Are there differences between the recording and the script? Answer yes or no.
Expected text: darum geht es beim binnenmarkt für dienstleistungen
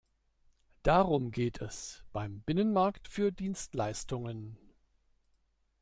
no